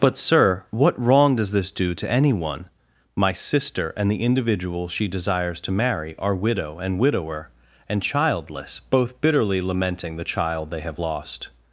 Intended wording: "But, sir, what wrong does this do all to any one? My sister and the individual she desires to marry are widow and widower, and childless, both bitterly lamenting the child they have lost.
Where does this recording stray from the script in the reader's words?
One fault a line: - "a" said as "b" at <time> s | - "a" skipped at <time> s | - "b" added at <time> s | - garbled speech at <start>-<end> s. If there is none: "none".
- "all" skipped at 1.9 s